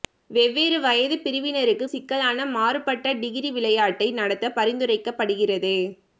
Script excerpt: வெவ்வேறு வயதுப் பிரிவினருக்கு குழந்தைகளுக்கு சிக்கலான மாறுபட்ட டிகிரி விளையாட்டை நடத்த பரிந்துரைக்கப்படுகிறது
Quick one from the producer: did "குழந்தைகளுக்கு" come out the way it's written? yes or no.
no